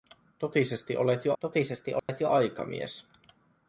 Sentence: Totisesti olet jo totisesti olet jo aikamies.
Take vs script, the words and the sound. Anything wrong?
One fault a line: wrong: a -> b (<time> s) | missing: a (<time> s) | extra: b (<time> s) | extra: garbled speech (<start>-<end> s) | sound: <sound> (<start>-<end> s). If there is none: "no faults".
sound: dropout (2.0-2.1 s)